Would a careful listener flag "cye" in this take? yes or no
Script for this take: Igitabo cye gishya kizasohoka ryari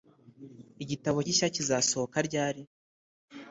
yes